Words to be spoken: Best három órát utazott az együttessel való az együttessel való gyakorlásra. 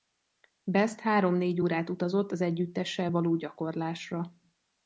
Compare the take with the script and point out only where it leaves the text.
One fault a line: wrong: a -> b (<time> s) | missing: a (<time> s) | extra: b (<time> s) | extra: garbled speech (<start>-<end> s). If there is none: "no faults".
extra: négy (1.4 s)
missing: az együttessel való (3.4 s)